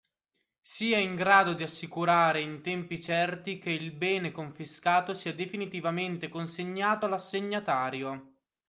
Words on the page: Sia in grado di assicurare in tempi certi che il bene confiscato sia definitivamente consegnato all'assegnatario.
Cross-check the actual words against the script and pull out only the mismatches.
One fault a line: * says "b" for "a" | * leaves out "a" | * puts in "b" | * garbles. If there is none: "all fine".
all fine